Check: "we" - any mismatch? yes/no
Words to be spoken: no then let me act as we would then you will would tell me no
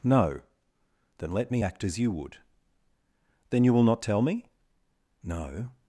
yes